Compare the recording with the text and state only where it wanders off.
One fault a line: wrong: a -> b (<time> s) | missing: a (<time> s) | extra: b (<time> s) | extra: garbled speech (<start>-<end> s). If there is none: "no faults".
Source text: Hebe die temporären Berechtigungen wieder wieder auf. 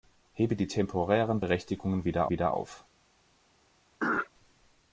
no faults